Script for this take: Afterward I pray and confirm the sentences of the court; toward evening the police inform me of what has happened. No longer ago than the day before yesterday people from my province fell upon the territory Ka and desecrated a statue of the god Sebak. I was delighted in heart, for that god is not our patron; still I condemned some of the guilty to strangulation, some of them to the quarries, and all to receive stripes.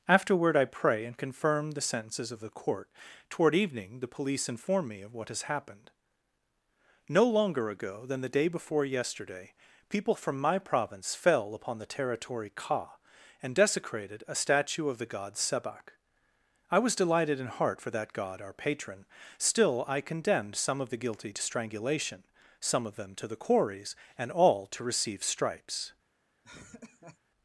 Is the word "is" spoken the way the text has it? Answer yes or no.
no